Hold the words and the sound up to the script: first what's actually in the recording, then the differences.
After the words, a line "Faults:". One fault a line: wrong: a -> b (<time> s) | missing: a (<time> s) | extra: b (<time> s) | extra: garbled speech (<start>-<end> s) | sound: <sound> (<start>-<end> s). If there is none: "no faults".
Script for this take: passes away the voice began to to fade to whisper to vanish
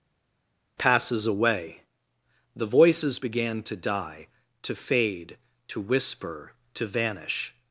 passes away the voices began to die to fade to whisper to vanish
Faults:
wrong: voice -> voices (2.7 s)
extra: die (3.8 s)